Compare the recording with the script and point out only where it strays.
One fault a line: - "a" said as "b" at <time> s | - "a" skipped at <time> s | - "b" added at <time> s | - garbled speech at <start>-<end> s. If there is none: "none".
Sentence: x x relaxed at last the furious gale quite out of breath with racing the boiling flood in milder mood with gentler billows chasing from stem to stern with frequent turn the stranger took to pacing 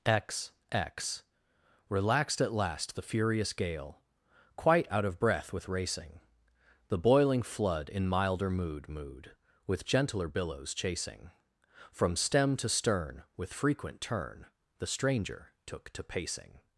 - "mood" added at 8.9 s